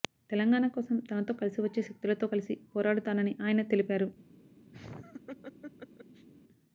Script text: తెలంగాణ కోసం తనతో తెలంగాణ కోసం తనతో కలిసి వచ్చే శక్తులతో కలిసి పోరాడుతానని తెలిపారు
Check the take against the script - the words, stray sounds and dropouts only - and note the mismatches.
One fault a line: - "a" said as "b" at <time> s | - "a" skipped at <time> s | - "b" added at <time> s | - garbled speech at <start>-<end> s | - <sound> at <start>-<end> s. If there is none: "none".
- "తెలంగాణ కోసం తనతో" skipped at 1.3 s
- "ఆయన" added at 3.4 s
- laugh at 4.7-6.3 s